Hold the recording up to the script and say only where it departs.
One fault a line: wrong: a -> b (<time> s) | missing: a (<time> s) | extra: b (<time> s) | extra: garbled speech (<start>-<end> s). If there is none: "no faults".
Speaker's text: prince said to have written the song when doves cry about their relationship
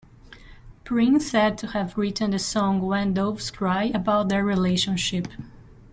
no faults